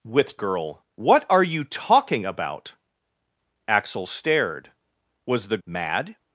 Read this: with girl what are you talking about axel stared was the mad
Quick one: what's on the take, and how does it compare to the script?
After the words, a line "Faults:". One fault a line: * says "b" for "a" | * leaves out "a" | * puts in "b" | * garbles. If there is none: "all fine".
with girl what are you talking about axel stared was the mad
Faults:
all fine